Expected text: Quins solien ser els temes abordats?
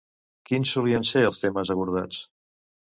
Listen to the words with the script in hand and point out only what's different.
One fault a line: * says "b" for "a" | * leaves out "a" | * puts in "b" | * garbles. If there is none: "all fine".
all fine